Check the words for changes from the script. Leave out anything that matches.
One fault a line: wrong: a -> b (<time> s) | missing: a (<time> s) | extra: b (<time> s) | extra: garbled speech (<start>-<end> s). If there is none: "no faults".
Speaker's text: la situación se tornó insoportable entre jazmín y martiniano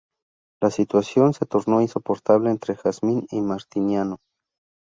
no faults